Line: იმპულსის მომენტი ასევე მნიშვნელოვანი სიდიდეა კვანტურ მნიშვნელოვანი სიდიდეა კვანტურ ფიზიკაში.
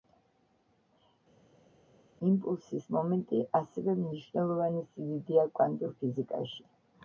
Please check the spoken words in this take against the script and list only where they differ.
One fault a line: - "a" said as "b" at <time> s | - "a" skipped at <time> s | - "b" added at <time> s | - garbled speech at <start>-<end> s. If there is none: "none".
- "მნიშვნელოვანი სიდიდეა კვანტურ" skipped at 6.0 s